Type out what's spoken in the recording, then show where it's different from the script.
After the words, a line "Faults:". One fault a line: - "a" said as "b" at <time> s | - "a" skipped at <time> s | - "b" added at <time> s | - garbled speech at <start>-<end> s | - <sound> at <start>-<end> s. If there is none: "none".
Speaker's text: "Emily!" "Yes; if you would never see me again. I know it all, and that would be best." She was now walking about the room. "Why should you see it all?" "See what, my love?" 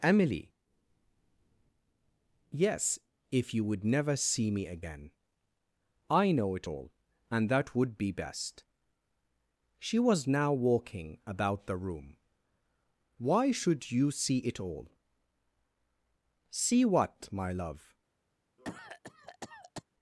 "Emily!" "Yes; if you would never see me again. I know it all, and that would be best." She was now walking about the room. "Why should you see it all?" "See what, my love?"
Faults:
- cough at 18.6-19.8 s